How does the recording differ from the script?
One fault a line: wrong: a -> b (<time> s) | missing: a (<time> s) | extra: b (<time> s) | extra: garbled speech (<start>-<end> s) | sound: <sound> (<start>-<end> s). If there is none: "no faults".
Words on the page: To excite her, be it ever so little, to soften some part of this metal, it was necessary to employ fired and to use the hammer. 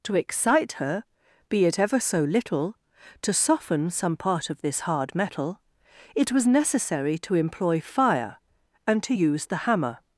extra: hard (4.8 s)
wrong: fired -> fire (7.8 s)